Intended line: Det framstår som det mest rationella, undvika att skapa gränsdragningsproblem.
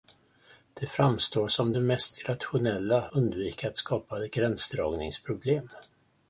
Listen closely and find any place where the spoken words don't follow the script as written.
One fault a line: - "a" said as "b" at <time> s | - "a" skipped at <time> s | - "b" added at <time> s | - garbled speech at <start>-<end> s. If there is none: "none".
none